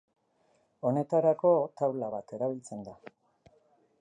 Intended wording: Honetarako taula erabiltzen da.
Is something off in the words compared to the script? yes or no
yes